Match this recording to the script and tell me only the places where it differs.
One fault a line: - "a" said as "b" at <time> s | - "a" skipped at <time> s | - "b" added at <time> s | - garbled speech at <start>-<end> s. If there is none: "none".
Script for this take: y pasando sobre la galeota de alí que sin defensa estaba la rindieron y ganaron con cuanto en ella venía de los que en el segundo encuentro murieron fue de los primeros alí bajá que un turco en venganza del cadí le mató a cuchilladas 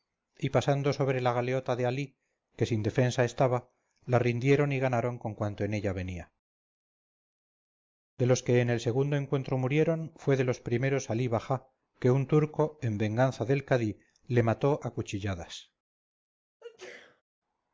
none